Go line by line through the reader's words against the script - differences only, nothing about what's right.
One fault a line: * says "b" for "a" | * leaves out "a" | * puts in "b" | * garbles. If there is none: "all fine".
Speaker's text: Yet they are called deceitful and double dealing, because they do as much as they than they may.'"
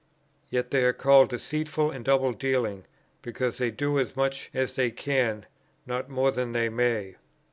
* puts in "can not more"